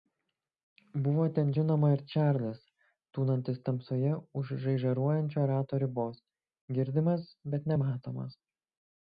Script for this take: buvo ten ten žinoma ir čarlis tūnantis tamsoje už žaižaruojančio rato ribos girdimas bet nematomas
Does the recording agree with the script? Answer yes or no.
no